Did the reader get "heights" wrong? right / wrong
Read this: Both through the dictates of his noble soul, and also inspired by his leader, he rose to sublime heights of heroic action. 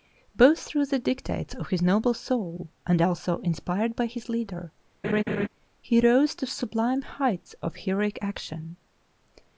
right